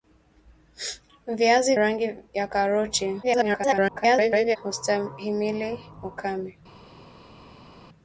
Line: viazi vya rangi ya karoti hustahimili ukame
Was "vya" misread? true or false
true